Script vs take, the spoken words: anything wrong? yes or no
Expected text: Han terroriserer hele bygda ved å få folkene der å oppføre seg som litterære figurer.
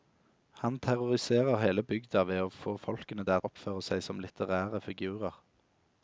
no